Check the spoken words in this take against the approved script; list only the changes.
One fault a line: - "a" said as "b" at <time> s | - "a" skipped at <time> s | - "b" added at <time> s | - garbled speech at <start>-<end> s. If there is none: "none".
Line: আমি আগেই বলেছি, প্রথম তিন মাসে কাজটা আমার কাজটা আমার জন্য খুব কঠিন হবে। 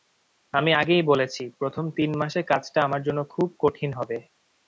- "কাজটা আমার" skipped at 3.0 s